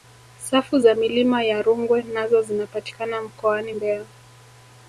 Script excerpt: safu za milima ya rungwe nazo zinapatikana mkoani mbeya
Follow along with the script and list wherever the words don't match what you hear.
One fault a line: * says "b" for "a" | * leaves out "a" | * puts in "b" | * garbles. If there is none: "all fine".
all fine